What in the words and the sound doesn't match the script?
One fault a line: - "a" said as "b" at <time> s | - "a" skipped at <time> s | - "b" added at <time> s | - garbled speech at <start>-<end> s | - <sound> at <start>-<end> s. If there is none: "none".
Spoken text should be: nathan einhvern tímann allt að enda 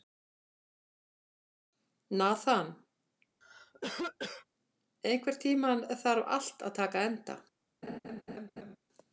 - cough at 3.4-4.5 s
- "þarf" added at 6.1 s
- "taka" added at 6.8 s
- laugh at 7.8-8.8 s